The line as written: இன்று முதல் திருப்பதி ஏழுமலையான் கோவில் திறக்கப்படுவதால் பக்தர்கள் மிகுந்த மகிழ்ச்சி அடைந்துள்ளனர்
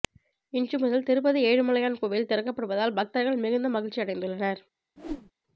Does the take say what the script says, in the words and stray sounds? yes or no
no